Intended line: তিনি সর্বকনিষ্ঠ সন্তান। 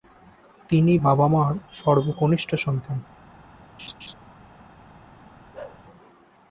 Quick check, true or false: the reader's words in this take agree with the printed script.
false